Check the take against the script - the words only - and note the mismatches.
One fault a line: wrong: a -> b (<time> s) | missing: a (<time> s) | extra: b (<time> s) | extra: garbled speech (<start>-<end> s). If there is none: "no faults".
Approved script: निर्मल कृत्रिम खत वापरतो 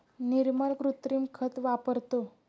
no faults